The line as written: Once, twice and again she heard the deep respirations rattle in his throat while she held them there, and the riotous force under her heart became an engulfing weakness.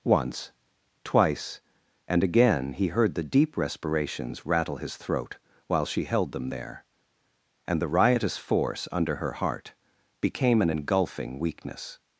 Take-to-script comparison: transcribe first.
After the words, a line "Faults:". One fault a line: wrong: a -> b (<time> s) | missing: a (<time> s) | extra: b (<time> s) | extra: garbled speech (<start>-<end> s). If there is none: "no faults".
Once, twice and again he heard the deep respirations rattle his throat while she held them there, and the riotous force under her heart became an engulfing weakness.
Faults:
wrong: she -> he (2.7 s)
missing: in (4.8 s)